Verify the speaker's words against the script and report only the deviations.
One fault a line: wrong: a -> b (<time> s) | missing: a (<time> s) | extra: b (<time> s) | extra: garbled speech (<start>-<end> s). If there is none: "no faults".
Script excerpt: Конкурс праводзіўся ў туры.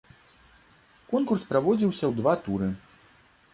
extra: два (2.2 s)